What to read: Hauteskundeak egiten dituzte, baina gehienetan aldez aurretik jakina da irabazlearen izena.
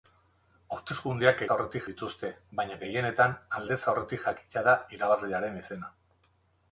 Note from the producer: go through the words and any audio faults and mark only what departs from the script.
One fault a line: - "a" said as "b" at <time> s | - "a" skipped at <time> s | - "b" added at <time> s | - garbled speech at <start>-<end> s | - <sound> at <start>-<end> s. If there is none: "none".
- "egiten" said as "aurretik" at 1.6 s